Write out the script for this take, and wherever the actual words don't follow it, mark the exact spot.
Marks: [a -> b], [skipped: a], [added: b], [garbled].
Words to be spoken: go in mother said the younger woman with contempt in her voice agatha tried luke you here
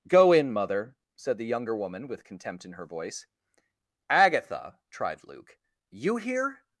go in mother said the younger woman with contempt in her voice agatha tried luke you here